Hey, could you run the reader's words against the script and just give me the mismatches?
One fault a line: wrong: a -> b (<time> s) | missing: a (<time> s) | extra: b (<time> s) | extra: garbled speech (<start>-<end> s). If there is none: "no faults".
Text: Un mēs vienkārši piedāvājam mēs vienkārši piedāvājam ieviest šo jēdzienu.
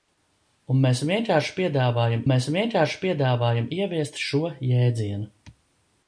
no faults